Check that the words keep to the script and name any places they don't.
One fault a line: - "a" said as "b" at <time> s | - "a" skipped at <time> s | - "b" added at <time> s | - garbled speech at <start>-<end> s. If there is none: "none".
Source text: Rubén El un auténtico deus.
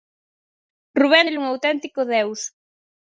none